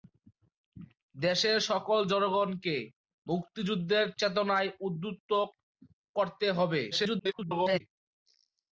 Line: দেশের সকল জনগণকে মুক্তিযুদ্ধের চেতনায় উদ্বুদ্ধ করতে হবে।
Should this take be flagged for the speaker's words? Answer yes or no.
yes